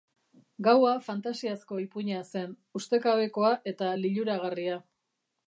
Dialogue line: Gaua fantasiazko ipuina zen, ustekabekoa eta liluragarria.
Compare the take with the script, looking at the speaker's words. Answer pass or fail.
pass